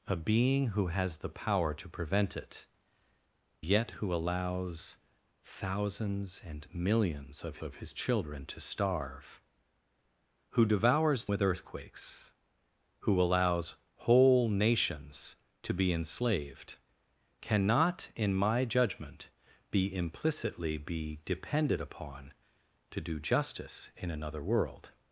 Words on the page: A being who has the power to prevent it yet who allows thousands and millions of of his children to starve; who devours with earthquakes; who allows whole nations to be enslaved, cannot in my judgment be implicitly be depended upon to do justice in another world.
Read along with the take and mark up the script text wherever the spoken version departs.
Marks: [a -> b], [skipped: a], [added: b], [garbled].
A being who has the power to prevent it yet who allows thousands and millions of of his children to starve; who devours with earthquakes; who allows whole nations to be enslaved, cannot in my judgment be implicitly be depended upon to do justice in another world.